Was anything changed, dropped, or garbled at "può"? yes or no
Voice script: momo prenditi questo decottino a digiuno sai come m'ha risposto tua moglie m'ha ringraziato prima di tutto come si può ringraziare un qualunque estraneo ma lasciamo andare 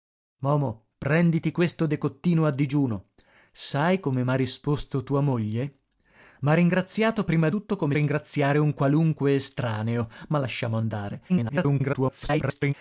yes